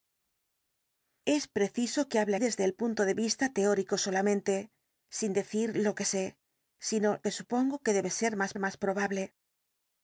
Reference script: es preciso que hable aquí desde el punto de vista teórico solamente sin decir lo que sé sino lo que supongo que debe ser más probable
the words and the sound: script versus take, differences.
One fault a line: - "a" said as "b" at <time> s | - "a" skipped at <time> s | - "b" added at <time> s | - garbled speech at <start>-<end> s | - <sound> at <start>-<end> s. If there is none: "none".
- "aquí" skipped at 2.4 s
- "lo" skipped at 7.2 s
- "más" added at 8.6 s